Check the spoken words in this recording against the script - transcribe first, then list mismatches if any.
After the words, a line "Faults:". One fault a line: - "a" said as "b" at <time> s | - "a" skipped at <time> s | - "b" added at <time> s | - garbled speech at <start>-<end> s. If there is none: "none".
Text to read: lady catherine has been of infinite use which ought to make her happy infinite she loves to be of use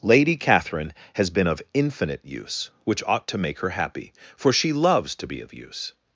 lady catherine has been of infinite use which ought to make her happy for she loves to be of use
Faults:
- "infinite" said as "for" at 4.3 s